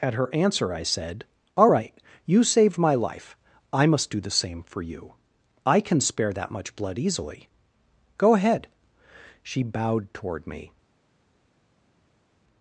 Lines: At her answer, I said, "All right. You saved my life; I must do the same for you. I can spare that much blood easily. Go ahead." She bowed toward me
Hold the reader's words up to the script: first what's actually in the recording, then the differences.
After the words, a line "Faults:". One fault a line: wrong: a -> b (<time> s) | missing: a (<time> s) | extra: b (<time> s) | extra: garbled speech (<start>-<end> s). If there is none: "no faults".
At her answer, I said, "All right. You saved my life; I must do the same for you. I can spare that much blood easily. Go ahead." She bowed toward me
Faults:
no faults